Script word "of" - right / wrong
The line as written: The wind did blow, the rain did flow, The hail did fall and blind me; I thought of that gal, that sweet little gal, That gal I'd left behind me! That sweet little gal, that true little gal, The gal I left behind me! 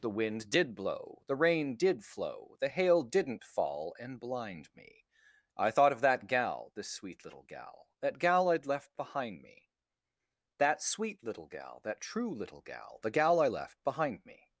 right